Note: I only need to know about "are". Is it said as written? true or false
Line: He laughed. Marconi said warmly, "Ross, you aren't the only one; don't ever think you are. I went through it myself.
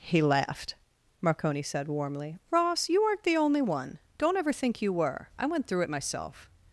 false